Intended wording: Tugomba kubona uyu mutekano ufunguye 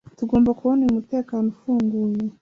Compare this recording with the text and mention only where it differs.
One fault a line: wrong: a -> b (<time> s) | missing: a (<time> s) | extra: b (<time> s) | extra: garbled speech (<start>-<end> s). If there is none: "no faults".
no faults